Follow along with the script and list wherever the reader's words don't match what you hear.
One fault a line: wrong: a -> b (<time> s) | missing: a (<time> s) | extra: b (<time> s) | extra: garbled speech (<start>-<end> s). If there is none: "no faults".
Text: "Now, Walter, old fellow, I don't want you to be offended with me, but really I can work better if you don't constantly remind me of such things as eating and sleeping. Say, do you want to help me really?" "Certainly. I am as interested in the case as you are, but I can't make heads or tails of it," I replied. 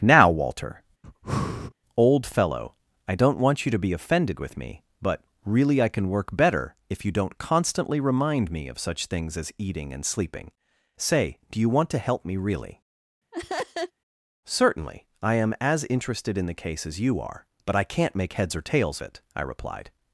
missing: of (19.0 s)